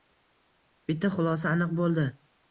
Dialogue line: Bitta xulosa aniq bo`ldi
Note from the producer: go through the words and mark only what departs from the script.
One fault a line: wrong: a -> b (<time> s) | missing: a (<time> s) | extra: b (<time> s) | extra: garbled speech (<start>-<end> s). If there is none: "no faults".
no faults